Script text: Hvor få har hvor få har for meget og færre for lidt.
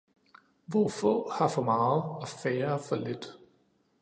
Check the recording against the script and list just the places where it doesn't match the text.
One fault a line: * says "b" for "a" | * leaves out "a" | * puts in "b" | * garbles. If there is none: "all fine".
* leaves out "hvor få har"